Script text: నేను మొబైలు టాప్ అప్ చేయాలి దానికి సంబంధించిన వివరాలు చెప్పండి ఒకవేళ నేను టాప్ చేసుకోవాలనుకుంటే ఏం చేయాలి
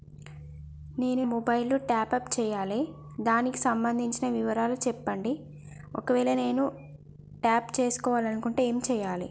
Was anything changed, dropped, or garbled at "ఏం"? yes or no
no